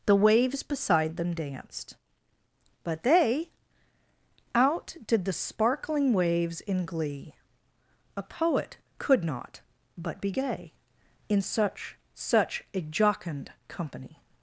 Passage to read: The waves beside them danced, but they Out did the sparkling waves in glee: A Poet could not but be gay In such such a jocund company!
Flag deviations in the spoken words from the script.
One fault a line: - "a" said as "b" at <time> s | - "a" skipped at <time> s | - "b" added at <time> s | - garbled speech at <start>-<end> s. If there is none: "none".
none